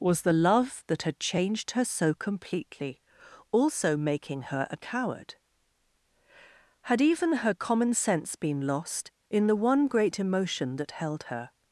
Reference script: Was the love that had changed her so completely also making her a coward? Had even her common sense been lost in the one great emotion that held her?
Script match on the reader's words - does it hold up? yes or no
yes